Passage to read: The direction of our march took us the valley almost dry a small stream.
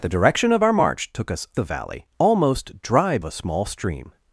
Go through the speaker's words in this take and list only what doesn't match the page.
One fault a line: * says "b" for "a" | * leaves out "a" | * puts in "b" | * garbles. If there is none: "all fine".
all fine